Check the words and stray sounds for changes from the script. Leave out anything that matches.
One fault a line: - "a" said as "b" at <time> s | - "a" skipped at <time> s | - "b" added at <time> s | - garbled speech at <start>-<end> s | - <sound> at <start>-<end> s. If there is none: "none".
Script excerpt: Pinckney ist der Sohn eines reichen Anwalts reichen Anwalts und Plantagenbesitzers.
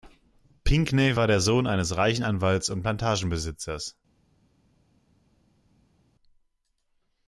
- "ist" said as "war" at 1.1 s
- "reichen Anwalts" skipped at 2.7 s